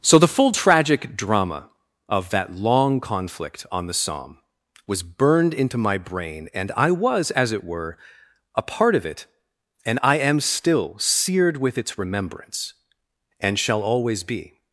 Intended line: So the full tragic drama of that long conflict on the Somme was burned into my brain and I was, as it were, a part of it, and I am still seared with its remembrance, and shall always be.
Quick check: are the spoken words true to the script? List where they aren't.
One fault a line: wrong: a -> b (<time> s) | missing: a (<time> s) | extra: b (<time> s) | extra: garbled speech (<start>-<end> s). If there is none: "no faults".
no faults